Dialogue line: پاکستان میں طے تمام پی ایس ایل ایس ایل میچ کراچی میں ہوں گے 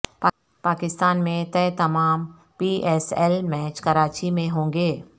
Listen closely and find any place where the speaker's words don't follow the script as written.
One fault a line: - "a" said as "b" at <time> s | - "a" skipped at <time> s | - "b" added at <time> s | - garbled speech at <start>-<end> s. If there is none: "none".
- "ایس ایل" skipped at 3.4 s